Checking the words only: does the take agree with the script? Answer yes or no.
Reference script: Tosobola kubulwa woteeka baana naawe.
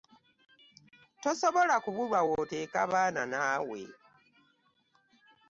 yes